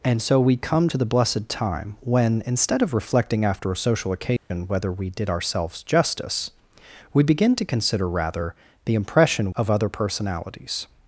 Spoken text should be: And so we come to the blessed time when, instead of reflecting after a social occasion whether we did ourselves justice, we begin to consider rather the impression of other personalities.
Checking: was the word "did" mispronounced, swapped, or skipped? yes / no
no